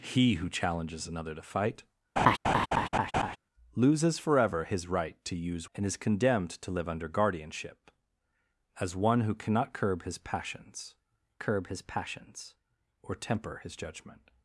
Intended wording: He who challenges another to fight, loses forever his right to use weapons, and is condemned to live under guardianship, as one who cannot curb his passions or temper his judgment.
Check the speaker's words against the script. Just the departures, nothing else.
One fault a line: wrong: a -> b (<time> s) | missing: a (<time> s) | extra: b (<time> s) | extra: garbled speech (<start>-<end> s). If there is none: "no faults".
missing: weapons (5.7 s)
extra: curb his passions (11.4 s)